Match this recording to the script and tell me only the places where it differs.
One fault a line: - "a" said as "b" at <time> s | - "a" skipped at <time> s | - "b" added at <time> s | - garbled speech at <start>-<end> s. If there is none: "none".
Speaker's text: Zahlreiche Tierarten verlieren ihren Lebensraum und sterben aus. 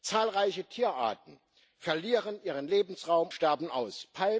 - "und" skipped at 3.3 s